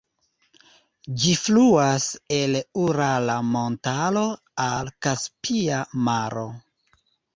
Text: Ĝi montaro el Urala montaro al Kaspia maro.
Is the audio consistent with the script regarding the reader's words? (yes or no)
no